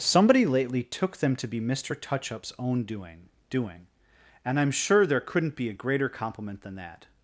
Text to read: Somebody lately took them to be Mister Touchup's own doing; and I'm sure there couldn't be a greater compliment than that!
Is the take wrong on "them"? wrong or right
right